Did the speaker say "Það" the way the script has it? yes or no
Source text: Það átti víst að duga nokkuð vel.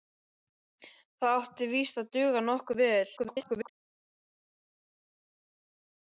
yes